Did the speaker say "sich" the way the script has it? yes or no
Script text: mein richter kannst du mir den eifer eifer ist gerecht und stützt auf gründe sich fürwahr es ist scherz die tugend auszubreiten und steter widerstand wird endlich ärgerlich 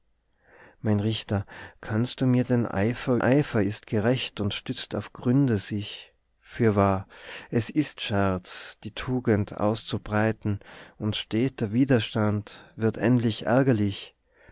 yes